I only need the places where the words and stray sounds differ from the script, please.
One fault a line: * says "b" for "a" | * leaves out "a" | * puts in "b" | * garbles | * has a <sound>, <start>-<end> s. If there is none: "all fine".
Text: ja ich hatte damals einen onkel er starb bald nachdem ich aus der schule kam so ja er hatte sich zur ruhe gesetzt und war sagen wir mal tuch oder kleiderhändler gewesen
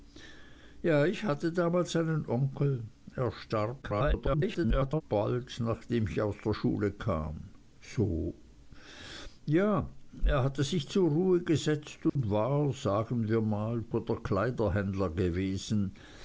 * garbles
* has a dropout, 12.1-12.2 s
* leaves out "tuch"